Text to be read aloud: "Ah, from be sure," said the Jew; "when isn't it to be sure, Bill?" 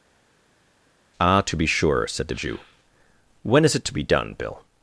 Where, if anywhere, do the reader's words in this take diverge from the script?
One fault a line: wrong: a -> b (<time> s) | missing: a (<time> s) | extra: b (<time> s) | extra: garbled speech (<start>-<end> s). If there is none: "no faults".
wrong: from -> to (1.4 s)
wrong: isn't -> is (3.6 s)
wrong: sure -> done (4.0 s)